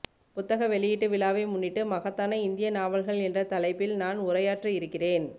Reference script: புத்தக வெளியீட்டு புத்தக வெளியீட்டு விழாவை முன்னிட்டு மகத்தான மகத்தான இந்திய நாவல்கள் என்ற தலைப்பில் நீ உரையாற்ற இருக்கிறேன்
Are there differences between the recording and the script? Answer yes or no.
yes